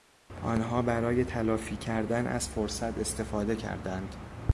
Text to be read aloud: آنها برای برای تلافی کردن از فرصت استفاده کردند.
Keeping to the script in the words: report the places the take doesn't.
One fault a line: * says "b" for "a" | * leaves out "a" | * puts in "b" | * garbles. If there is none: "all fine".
* leaves out "برای"